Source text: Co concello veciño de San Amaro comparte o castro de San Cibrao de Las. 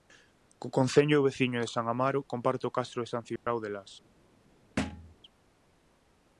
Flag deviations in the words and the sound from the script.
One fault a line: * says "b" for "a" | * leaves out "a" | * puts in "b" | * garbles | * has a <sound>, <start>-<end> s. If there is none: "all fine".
* has a dropout, 3.4-3.5 s
* has a thud, 4.8-5.1 s